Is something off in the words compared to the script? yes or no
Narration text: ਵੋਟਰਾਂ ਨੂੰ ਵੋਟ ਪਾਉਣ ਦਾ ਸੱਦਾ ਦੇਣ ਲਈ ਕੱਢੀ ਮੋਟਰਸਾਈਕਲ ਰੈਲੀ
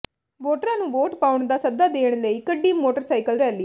no